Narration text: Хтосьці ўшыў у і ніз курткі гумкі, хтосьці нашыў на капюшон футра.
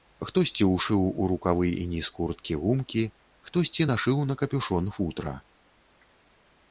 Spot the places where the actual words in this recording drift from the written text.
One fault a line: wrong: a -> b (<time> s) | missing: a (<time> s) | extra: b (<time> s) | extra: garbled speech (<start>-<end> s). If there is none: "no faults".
extra: рукавы (1.3 s)